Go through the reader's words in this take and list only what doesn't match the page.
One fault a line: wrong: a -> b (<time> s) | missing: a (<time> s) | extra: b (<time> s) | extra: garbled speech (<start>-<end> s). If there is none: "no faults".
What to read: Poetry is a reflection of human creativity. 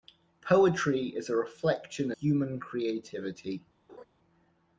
missing: of (2.1 s)